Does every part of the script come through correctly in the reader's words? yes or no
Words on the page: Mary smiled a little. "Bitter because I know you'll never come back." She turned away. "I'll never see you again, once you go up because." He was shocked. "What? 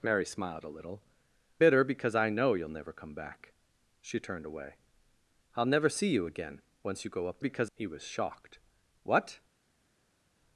yes